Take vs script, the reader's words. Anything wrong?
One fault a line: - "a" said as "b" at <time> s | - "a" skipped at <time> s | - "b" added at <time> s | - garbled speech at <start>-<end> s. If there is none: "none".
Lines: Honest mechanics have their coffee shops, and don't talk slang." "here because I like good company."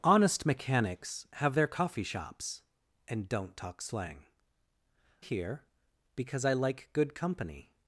none